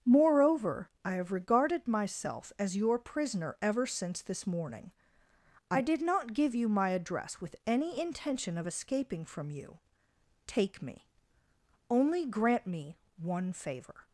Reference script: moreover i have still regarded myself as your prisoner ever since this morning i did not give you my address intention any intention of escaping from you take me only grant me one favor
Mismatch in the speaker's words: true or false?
true